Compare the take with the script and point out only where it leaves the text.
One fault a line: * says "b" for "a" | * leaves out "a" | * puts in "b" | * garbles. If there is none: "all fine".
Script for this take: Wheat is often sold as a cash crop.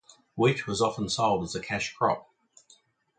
* says "was" for "is"